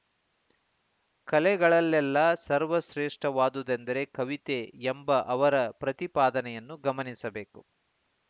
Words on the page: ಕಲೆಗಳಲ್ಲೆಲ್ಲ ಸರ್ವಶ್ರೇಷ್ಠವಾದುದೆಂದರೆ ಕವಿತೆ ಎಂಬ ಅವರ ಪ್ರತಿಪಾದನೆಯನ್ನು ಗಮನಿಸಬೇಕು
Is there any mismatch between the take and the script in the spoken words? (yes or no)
no